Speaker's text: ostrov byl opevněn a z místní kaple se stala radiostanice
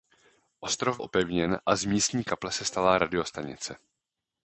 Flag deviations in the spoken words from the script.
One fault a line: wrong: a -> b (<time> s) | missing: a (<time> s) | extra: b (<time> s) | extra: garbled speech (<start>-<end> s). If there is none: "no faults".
missing: byl (1.0 s)